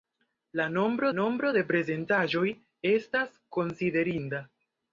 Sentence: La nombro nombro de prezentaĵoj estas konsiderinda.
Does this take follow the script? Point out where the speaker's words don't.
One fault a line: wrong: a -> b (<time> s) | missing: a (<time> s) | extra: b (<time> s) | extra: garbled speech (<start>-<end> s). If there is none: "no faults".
no faults